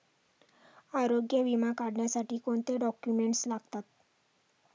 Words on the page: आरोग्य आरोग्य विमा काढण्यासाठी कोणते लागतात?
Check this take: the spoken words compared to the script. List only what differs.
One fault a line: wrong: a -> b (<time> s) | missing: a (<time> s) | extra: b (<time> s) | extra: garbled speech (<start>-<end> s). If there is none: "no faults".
missing: आरोग्य (1.4 s)
extra: डॉक्युमेंट्स (2.8 s)